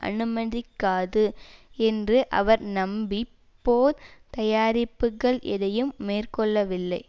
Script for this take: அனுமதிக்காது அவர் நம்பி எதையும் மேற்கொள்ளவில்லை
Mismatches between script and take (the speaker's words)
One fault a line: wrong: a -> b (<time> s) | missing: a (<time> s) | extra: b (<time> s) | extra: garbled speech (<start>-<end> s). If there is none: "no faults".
extra: என்று (1.8 s)
extra: போர் தயாரிப்புக்கள் (3.6 s)